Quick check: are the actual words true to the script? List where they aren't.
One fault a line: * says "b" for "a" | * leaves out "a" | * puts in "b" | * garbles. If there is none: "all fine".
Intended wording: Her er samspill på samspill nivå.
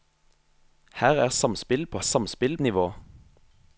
all fine